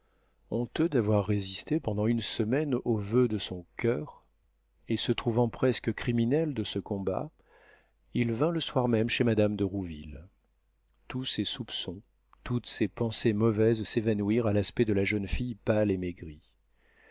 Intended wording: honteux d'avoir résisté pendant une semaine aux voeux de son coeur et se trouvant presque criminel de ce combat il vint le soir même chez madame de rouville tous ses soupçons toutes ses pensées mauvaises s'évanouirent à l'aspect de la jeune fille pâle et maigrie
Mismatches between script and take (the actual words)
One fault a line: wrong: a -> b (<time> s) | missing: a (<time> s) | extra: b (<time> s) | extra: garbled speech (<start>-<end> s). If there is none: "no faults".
no faults